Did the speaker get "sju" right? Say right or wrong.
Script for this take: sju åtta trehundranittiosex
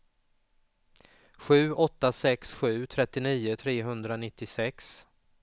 right